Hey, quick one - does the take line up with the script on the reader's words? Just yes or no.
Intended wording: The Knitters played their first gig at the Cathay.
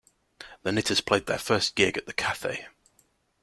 yes